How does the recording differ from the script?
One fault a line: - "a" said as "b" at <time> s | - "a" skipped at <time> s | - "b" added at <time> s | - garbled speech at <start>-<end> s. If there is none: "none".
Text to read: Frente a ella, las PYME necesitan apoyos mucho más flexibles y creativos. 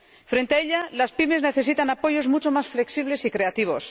none